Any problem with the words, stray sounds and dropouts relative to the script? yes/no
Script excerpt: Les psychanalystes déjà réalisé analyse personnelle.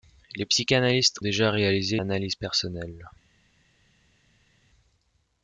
no